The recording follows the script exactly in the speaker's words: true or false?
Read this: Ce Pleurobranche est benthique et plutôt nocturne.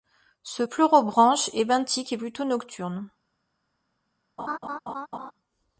true